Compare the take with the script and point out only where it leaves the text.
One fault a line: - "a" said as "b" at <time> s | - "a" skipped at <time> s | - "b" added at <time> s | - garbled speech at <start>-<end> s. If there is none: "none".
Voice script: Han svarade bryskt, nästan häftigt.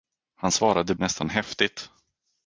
- "bryskt" skipped at 0.9 s